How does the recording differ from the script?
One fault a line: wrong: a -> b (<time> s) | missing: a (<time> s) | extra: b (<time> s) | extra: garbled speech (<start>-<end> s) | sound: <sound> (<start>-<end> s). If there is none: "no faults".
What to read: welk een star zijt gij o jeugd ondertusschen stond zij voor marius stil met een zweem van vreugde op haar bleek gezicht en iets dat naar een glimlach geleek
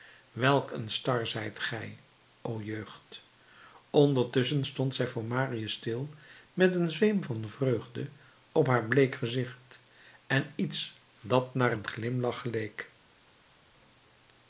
no faults